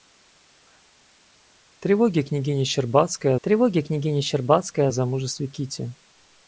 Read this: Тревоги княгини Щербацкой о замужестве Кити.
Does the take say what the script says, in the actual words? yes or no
no